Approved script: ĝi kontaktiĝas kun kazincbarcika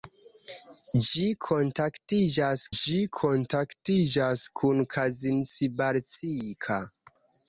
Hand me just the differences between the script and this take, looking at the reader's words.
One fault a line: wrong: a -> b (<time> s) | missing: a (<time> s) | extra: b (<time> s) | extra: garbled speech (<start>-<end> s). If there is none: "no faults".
extra: ĝi kontaktiĝas (2.8 s)